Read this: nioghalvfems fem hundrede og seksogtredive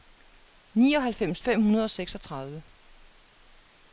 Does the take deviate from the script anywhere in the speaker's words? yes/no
no